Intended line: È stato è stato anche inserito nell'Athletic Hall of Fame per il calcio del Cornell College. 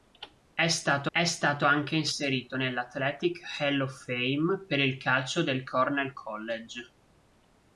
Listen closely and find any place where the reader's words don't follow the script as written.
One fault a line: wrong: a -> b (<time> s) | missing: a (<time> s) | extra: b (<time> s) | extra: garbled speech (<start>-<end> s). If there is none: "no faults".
no faults